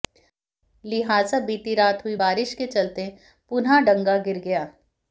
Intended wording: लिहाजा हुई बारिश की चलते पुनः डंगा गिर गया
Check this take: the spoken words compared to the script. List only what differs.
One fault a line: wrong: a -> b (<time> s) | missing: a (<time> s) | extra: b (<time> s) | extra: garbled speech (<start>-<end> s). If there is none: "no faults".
extra: बीती रात (1.4 s)
wrong: की -> के (2.5 s)